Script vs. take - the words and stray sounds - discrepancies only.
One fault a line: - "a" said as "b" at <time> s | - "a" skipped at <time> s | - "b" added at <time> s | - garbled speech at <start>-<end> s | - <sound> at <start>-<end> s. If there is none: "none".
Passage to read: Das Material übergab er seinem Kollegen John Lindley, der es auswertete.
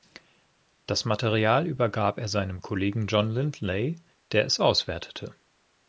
none